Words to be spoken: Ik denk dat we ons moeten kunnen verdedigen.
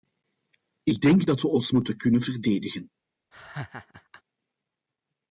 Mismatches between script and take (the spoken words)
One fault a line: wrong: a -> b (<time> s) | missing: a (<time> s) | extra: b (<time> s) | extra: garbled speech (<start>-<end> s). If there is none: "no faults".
no faults